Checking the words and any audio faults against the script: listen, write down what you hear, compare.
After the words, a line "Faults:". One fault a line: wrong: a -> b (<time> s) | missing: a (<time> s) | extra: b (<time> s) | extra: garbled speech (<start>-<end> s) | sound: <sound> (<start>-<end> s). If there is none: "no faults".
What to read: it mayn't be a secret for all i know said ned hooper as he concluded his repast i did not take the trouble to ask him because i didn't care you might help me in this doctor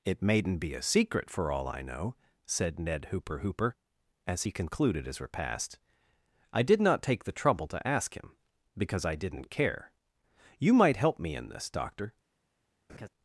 it mayn't be a secret for all i know said ned hooper hooper as he concluded his repast i did not take the trouble to ask him because i didn't care you might help me in this doctor
Faults:
extra: hooper (3.4 s)
sound: laugh (12.9-13.1 s)